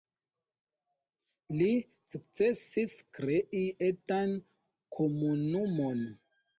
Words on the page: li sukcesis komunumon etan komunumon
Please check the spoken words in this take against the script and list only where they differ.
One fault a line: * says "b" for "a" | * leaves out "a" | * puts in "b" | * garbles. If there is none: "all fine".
* says "krei" for "komunumon"